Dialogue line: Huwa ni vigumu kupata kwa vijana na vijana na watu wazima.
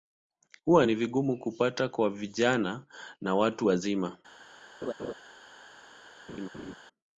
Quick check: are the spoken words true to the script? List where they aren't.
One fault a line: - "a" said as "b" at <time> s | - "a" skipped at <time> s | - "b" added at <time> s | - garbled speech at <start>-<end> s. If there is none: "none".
- "vijana na" skipped at 3.3 s